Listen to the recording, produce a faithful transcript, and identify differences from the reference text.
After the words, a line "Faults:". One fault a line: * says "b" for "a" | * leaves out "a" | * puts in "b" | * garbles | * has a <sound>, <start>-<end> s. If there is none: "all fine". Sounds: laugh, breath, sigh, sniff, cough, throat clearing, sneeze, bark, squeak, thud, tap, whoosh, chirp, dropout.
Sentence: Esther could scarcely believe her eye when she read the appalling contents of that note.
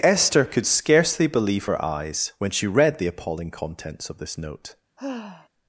Esther could scarcely believe her eyes when she read the appalling contents of this note.
Faults:
* says "eyes" for "eye"
* says "this" for "that"
* has a sigh, 5.0-5.5 s